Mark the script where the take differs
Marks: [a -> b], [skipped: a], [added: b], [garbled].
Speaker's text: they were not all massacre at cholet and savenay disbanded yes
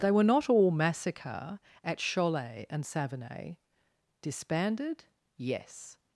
they were not all massacre at cholet and savenay disbanded yes